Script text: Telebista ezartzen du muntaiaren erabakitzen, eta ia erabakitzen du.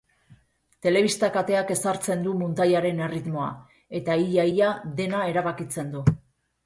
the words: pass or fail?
fail